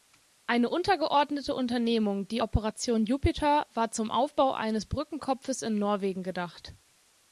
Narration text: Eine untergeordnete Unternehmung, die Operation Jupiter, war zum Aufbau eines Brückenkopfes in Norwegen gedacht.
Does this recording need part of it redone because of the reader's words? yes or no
no